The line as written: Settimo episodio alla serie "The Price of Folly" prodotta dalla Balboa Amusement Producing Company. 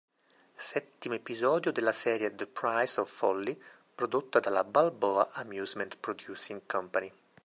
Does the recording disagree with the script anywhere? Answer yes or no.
yes